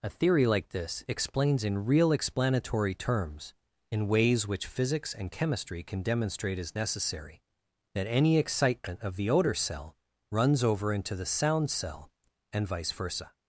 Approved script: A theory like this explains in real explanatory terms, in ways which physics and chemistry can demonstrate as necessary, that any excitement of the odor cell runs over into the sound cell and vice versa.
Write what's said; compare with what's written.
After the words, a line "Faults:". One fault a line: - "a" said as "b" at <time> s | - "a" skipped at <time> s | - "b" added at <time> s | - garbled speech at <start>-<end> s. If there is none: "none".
A theory like this explains in real explanatory terms, in ways which physics and chemistry can demonstrate as necessary, that any excitement of the odor cell runs over into the sound cell and vice versa.
Faults:
none